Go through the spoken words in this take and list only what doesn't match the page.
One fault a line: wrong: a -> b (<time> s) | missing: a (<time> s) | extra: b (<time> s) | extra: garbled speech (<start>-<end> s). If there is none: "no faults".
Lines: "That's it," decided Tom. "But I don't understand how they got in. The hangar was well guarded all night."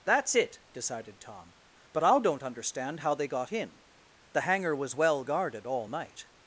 no faults